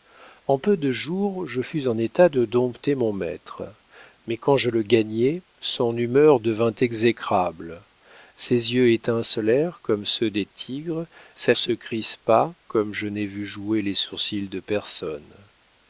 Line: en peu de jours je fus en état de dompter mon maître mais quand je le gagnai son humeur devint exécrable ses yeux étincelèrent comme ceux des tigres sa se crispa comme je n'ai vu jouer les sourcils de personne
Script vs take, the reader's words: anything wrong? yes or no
no